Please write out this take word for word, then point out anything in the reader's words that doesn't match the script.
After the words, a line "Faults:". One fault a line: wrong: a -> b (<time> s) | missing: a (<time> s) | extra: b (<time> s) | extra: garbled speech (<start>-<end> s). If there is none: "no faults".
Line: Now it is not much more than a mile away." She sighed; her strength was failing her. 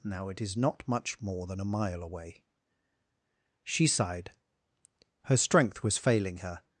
Now it is not much more than a mile away." She sighed; her strength was failing her.
Faults:
no faults